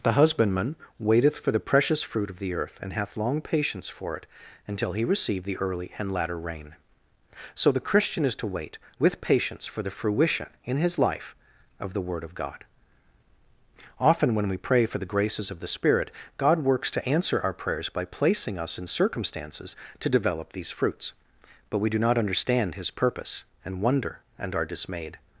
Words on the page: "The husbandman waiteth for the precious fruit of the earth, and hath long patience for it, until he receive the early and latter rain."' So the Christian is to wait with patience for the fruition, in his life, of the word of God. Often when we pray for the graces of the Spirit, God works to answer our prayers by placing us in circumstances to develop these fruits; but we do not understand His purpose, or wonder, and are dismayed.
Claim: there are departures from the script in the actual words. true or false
true